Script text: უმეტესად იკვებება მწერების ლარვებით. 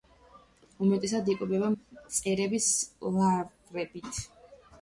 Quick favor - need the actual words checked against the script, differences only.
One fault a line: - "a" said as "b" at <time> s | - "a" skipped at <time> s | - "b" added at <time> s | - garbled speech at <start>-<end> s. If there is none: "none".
none